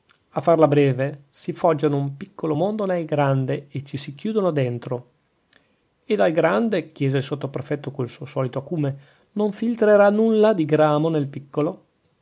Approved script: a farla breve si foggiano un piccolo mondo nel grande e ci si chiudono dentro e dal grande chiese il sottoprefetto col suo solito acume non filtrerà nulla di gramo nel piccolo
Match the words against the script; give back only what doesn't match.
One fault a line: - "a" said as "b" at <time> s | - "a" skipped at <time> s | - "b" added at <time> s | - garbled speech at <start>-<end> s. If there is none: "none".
none